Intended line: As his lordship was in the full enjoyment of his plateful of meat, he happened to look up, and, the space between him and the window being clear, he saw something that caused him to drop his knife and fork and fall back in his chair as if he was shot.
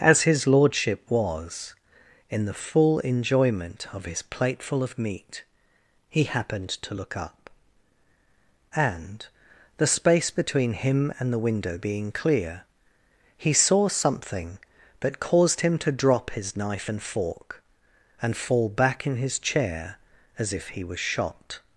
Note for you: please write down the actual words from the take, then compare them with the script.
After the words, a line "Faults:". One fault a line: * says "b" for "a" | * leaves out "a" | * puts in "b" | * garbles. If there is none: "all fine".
As his lordship was in the full enjoyment of his plateful of meat, he happened to look up, and, the space between him and the window being clear, he saw something that caused him to drop his knife and fork and fall back in his chair as if he was shot.
Faults:
all fine